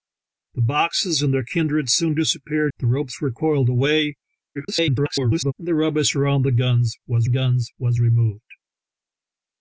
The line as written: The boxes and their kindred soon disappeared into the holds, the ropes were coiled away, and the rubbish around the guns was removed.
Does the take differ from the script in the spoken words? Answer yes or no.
yes